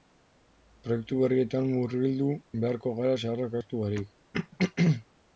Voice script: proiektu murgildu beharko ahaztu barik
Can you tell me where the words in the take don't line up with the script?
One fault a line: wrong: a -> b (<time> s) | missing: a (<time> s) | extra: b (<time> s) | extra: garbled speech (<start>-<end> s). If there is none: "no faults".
extra: berrietan (1.2 s)
extra: gara zaharrak (3.0 s)